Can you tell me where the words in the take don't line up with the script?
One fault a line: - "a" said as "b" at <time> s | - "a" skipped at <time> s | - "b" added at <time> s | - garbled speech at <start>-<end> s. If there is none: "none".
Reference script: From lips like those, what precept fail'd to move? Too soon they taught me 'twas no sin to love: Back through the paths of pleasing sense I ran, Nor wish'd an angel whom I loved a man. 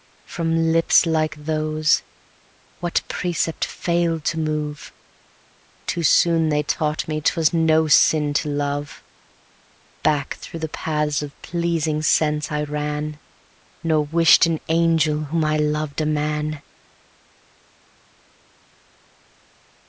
none